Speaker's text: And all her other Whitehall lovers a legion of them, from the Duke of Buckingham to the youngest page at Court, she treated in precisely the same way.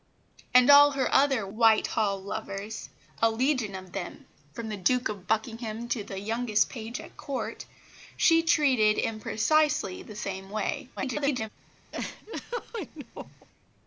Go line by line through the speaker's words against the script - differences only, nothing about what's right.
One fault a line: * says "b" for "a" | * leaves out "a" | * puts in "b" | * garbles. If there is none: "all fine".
* garbles